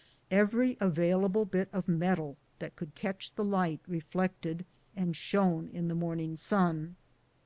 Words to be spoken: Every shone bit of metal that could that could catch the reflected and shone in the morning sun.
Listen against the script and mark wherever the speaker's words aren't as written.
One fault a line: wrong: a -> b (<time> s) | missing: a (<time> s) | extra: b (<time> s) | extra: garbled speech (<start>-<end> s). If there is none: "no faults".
wrong: shone -> available (0.8 s)
missing: that could (2.9 s)
extra: light (3.4 s)